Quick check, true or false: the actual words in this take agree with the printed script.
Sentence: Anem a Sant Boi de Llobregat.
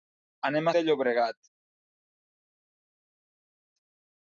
false